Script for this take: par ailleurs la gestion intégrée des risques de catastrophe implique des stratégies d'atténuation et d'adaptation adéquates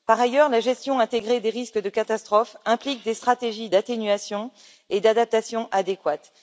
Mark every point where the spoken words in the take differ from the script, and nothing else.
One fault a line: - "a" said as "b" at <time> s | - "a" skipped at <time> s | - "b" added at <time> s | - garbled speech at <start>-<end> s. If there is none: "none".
none